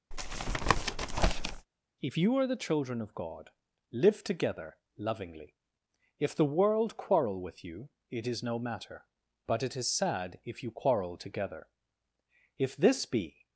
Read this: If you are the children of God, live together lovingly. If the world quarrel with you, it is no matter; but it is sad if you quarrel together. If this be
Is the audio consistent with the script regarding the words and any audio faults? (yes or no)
no